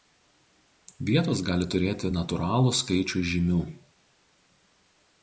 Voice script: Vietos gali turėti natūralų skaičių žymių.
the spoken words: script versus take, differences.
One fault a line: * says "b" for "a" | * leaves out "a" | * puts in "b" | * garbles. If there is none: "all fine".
all fine